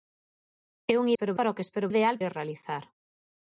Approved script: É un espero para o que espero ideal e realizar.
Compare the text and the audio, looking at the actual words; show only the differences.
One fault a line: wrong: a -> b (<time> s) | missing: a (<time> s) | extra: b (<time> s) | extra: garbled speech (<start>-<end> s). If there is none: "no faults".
no faults